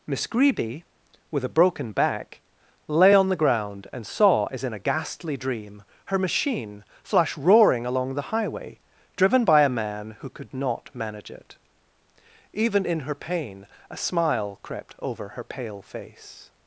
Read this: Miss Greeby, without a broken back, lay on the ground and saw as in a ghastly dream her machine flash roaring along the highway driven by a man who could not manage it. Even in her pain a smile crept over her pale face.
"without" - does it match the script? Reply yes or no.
no